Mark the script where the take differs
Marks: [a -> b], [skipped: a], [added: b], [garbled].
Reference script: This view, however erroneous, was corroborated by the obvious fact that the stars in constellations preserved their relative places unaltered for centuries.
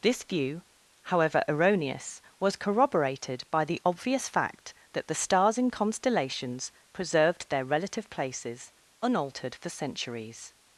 This view, however erroneous, was corroborated by the obvious fact that the stars in constellations preserved their relative places unaltered for centuries.